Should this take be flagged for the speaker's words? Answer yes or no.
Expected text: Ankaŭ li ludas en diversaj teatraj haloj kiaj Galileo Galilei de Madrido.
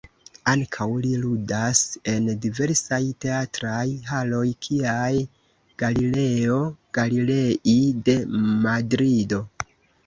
no